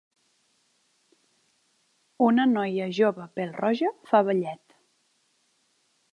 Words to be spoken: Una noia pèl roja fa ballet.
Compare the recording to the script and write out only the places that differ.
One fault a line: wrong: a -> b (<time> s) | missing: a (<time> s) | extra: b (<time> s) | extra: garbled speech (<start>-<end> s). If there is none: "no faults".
extra: jove (3.0 s)